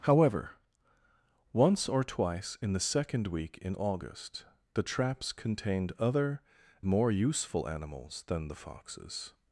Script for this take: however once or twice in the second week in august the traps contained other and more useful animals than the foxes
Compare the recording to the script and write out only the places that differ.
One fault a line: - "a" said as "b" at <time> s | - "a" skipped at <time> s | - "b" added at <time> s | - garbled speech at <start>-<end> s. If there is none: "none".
- "and" skipped at 6.4 s